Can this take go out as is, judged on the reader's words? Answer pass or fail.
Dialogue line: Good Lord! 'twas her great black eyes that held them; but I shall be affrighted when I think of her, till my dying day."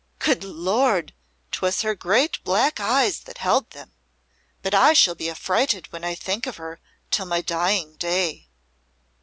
pass